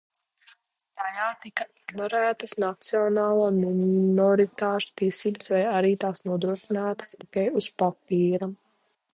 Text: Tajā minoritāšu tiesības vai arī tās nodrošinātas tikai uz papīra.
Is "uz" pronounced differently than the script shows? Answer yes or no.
no